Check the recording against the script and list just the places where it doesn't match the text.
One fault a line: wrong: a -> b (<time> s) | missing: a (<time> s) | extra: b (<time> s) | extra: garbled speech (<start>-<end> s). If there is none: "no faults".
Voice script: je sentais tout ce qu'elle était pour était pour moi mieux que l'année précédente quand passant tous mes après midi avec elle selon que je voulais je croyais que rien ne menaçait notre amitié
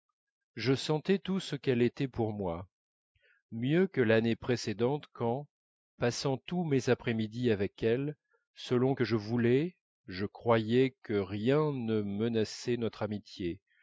missing: était pour (2.3 s)